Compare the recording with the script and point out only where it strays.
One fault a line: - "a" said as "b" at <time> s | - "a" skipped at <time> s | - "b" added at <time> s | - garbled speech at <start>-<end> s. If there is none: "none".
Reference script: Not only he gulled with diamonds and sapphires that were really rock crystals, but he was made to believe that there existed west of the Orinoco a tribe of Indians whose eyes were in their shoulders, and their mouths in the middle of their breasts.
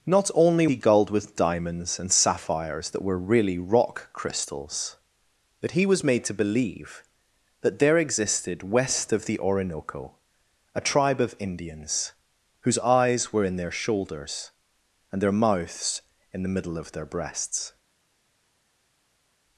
none